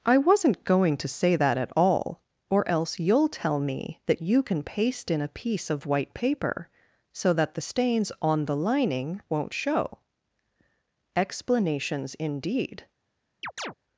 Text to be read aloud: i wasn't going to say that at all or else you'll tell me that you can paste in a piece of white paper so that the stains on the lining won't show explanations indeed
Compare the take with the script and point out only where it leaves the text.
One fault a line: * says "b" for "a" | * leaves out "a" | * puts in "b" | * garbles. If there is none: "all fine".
all fine